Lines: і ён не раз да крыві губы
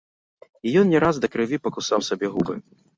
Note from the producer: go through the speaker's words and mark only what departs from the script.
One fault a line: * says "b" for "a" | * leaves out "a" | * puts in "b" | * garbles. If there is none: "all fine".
* puts in "пакусаў сабе"